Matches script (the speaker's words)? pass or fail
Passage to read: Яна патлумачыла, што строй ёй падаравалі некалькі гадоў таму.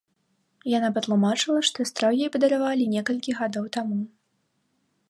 pass